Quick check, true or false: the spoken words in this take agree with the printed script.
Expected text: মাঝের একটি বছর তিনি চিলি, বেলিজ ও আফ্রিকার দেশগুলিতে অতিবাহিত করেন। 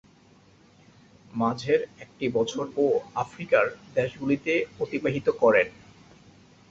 false